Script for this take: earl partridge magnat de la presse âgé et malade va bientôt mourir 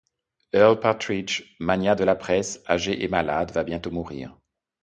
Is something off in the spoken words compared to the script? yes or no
no